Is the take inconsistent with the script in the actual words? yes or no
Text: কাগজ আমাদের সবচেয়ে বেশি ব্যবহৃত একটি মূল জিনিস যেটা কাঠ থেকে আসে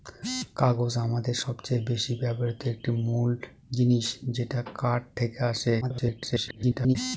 yes